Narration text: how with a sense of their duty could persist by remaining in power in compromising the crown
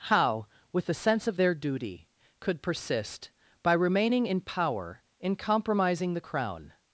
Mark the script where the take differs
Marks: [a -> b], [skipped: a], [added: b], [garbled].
how with a sense of their duty could persist by remaining in power in compromising the crown